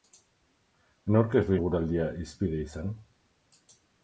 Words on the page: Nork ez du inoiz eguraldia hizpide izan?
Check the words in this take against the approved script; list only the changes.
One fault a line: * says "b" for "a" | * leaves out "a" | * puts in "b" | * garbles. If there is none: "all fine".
* leaves out "inoiz"